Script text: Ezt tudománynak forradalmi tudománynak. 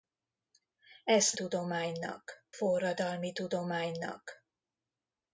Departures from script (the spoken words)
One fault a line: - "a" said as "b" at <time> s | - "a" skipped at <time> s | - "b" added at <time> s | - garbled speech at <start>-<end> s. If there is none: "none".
none